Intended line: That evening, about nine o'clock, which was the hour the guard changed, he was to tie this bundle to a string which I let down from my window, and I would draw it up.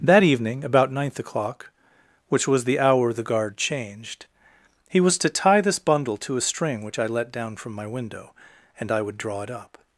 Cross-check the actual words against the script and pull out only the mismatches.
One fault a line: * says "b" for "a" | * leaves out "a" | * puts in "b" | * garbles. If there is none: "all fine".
* says "ninth" for "nine"